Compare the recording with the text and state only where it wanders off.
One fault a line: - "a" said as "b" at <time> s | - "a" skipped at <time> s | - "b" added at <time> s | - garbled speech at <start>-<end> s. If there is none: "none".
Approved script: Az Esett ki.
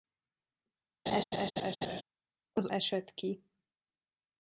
none